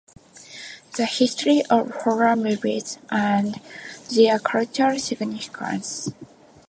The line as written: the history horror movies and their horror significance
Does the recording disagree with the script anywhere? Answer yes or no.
yes